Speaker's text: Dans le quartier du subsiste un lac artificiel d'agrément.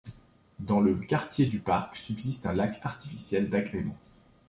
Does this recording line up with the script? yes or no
no